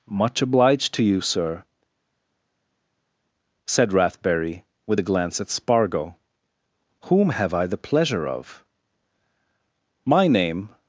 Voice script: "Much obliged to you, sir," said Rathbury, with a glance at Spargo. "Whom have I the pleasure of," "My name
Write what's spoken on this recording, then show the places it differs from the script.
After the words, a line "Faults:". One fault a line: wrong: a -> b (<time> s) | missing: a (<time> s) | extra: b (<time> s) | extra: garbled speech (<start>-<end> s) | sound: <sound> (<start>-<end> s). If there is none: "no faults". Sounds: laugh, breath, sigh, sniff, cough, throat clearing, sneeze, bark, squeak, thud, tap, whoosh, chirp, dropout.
"Much obliged to you, sir," said Rathbury, with a glance at Spargo. "Whom have I the pleasure of," "My name
Faults:
no faults